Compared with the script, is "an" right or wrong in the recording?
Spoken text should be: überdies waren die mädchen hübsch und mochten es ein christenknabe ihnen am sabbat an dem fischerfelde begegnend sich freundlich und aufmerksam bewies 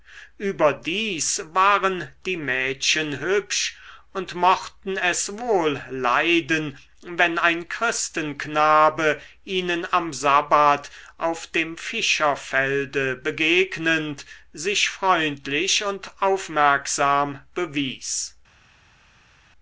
wrong